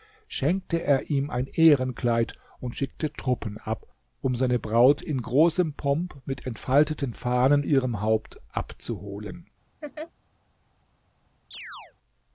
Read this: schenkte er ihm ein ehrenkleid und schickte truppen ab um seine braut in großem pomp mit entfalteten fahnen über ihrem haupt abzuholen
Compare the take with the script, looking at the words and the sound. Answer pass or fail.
fail